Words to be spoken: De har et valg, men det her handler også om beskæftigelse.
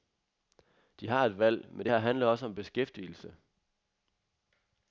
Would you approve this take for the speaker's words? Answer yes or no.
yes